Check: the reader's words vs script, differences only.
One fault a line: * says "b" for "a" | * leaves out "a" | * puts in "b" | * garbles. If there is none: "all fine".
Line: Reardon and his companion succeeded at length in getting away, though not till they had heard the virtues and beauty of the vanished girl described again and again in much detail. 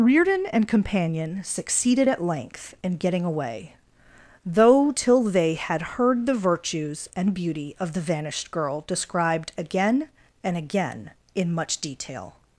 * leaves out "his"
* leaves out "not"